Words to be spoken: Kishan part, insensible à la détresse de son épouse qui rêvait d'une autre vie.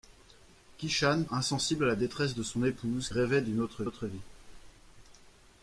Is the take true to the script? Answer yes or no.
no